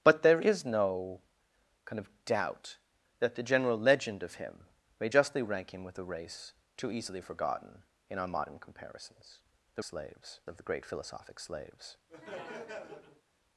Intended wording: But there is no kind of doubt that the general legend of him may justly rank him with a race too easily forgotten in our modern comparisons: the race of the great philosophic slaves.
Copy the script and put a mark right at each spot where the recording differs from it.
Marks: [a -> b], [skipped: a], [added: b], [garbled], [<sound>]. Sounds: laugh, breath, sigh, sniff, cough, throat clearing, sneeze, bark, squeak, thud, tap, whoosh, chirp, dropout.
But there is no kind of doubt that the general legend of him may justly rank him with a race too easily forgotten in our modern comparisons: the [race -> slaves] of the great philosophic slaves. [laugh]